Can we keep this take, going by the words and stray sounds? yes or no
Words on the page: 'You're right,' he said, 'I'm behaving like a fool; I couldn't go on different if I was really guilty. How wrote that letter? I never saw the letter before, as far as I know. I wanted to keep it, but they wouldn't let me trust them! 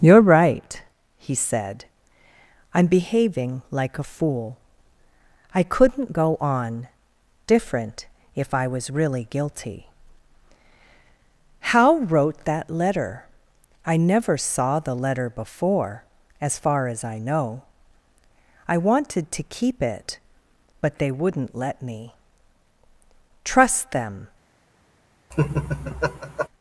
no